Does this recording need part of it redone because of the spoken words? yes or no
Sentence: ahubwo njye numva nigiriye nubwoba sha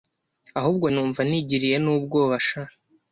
yes